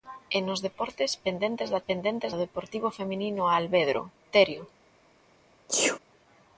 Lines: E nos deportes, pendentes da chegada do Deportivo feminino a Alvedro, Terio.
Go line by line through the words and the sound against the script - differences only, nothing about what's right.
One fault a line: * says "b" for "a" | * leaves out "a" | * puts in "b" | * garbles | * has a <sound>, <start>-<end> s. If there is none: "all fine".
* says "pendentes" for "chegada"
* has a sneeze, 5.7-6.0 s